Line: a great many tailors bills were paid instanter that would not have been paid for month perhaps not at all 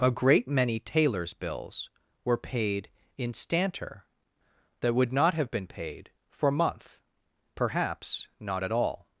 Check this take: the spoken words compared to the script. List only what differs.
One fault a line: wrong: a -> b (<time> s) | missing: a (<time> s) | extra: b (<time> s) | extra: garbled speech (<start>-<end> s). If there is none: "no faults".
no faults